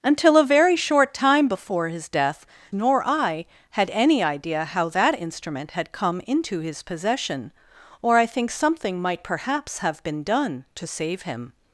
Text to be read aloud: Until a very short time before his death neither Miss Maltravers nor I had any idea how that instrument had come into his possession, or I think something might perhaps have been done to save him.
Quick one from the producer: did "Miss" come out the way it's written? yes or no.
no